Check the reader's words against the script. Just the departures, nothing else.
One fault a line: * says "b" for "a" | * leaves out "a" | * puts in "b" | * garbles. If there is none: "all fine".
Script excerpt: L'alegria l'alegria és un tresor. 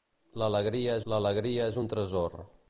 all fine